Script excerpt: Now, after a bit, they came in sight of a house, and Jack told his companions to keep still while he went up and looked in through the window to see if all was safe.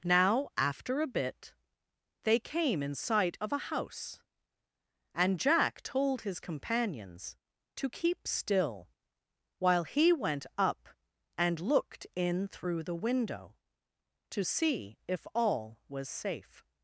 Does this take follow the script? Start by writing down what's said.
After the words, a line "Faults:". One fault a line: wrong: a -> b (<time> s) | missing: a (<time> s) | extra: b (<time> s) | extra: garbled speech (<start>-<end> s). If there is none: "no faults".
Now, after a bit, they came in sight of a house, and Jack told his companions to keep still while he went up and looked in through the window to see if all was safe.
Faults:
no faults